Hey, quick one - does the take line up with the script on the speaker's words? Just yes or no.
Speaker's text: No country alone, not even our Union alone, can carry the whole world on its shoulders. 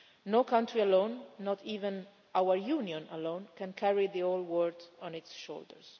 yes